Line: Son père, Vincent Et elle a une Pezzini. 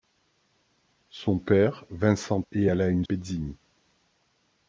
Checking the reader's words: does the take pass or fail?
pass